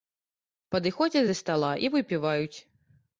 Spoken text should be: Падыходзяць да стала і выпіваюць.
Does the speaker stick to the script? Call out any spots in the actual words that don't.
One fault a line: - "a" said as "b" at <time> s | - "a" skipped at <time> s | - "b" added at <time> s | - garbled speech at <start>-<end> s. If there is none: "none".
none